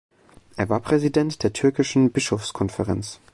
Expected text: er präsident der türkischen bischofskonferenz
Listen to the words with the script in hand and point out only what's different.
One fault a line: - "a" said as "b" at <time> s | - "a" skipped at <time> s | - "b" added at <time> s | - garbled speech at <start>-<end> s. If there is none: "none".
- "war" added at 0.7 s